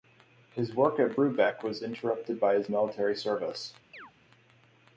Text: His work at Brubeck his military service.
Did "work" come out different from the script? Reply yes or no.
no